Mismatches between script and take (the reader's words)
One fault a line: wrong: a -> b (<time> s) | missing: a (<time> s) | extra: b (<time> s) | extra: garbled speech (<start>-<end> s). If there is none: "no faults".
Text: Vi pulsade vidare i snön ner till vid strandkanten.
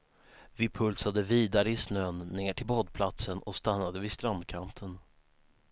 extra: badplatsen och stannade (2.6 s)